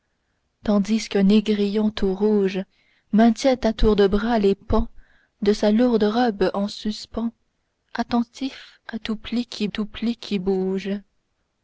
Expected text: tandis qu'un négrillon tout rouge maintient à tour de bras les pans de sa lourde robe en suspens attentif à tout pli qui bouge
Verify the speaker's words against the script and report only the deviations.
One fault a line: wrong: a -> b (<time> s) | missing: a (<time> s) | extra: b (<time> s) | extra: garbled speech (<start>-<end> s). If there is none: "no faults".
extra: tout pli qui (9.7 s)